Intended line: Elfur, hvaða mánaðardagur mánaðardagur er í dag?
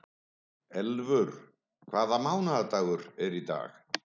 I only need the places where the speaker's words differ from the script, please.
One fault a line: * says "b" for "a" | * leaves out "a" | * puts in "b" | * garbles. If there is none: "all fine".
* leaves out "mánaðardagur"